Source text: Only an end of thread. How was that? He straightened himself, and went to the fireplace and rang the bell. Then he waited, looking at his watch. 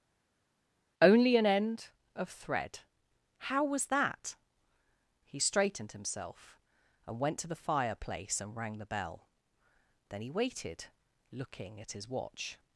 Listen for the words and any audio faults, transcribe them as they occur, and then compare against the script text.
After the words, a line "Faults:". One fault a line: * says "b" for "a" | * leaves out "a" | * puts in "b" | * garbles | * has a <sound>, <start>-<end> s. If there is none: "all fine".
Only an end of thread. How was that? He straightened himself, and went to the fireplace and rang the bell. Then he waited, looking at his watch.
Faults:
all fine